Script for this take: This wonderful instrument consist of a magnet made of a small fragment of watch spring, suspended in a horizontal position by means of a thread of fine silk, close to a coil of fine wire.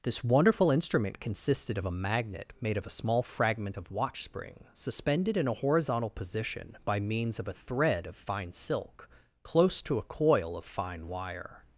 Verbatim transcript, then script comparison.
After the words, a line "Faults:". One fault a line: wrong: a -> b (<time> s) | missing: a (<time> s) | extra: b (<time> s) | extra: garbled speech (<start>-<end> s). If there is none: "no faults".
This wonderful instrument consisted of a magnet made of a small fragment of watch spring, suspended in a horizontal position by means of a thread of fine silk, close to a coil of fine wire.
Faults:
wrong: consist -> consisted (1.2 s)